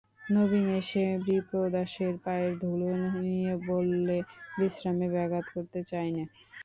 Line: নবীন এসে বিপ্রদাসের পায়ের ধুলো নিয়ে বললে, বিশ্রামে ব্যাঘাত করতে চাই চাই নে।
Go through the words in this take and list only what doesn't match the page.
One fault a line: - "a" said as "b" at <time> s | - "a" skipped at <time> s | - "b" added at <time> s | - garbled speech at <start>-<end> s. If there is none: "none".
- "চাই" skipped at 6.1 s